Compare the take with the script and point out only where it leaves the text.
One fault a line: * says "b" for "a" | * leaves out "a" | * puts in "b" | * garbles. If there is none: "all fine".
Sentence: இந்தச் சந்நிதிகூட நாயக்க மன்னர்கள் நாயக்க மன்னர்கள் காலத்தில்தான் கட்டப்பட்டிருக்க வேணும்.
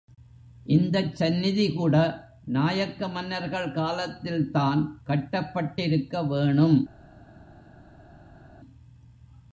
* leaves out "நாயக்க மன்னர்கள்"